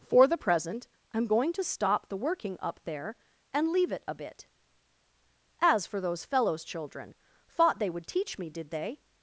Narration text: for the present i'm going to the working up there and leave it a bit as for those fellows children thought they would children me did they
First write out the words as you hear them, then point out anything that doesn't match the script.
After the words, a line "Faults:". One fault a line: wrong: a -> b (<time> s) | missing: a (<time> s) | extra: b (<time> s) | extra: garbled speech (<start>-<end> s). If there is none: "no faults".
for the present i'm going to stop the working up there and leave it a bit as for those fellows children thought they would teach me did they
Faults:
extra: stop (1.6 s)
wrong: children -> teach (8.1 s)